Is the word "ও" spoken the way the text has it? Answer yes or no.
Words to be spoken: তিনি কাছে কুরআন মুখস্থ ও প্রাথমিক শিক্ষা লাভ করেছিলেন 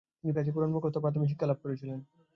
yes